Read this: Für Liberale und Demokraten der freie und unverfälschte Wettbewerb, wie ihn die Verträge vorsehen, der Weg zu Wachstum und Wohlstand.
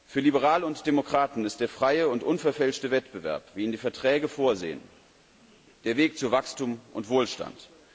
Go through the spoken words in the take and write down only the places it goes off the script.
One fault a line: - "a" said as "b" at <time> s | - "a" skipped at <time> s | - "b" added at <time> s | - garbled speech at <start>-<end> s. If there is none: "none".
- "ist" added at 1.4 s